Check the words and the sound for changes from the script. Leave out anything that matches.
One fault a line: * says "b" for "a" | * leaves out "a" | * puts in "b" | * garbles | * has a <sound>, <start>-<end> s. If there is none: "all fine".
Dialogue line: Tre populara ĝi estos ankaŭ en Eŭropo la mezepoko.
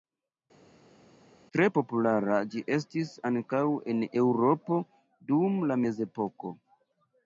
* says "estis" for "estos"
* puts in "dum"